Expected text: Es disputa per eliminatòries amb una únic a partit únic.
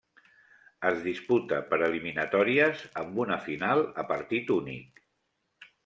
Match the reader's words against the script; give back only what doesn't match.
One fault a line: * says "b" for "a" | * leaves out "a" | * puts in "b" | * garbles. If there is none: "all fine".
* says "final" for "únic"